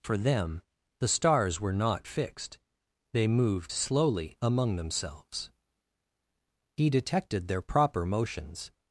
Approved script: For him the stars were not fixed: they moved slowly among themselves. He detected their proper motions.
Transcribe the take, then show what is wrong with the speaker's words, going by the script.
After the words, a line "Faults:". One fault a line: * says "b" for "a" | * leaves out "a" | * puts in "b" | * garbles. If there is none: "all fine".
For them the stars were not fixed: they moved slowly among themselves. He detected their proper motions.
Faults:
* says "them" for "him"